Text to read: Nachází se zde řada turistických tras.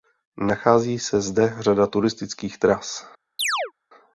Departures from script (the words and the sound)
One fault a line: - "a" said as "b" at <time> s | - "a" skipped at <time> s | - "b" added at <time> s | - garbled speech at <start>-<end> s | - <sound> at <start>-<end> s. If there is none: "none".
- chirp at 3.4-3.7 s